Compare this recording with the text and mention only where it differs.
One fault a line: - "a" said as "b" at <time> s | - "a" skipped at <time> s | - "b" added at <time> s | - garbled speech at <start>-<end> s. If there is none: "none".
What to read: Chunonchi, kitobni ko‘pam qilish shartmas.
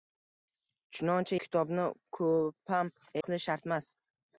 none